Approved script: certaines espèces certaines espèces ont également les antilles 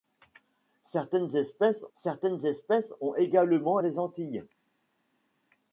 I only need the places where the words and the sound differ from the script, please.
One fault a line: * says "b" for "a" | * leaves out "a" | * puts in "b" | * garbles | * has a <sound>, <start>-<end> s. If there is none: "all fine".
all fine